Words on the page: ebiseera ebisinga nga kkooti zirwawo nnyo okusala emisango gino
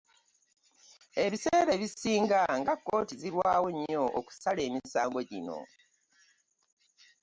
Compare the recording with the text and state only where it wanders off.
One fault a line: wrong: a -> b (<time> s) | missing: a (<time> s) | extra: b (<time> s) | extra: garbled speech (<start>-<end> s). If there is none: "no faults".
no faults